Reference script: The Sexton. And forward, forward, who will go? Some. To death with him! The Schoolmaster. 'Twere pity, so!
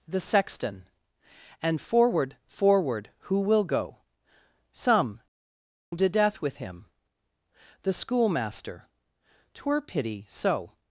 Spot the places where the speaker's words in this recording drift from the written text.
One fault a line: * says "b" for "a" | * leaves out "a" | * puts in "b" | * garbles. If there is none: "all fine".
all fine